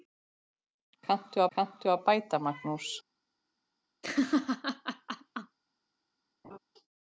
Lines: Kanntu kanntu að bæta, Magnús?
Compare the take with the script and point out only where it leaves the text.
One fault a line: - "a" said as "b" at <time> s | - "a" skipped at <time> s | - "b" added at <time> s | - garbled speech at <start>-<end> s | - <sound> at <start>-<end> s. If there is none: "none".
- laugh at 4.0-5.6 s
- laugh at 6.4-6.6 s